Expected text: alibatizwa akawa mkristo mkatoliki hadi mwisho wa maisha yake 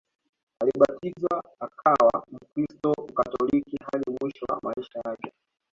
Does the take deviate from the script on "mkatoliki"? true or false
false